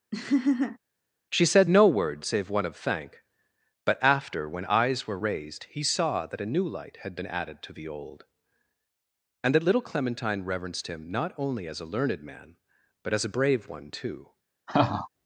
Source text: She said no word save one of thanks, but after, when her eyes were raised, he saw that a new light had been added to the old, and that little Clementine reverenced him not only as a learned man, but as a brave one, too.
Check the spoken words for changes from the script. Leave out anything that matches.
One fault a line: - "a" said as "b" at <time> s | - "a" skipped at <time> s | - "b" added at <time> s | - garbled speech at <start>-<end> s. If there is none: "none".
- "thanks" said as "thank" at 2.7 s
- "her" skipped at 4.6 s